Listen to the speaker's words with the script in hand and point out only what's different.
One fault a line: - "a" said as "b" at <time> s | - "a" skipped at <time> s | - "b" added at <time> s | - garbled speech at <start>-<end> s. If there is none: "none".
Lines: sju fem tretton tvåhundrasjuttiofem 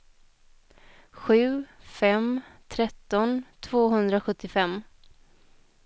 none